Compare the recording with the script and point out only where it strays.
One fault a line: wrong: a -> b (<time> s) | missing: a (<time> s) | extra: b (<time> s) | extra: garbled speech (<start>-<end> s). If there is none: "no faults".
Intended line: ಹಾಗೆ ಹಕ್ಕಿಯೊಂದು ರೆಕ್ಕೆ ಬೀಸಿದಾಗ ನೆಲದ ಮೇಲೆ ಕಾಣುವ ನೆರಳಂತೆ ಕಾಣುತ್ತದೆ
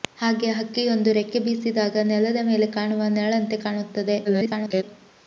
extra: garbled speech (4.2-4.8 s)